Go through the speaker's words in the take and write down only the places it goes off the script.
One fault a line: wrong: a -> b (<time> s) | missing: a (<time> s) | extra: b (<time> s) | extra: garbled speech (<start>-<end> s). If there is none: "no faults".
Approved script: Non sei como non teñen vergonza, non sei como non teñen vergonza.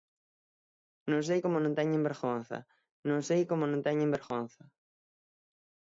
no faults